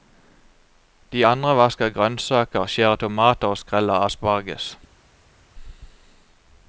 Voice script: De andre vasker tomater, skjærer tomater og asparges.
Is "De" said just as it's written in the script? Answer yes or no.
yes